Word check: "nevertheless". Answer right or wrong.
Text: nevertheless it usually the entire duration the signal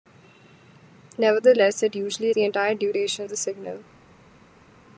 right